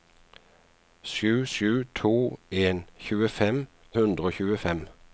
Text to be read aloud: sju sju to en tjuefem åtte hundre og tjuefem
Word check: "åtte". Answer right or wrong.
wrong